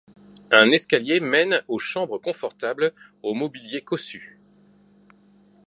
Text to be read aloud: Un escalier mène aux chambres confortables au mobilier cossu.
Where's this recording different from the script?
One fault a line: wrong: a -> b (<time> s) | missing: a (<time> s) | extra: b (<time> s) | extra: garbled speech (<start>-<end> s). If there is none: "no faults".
no faults